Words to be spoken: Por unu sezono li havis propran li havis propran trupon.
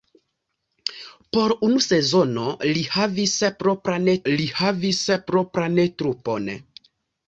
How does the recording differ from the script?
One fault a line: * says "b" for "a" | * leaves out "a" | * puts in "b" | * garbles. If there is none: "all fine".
all fine